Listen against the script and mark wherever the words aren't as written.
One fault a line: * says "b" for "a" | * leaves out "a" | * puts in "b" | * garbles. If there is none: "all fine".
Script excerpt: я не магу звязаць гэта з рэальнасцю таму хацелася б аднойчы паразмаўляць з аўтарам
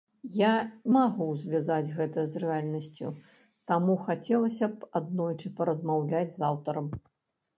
* leaves out "не"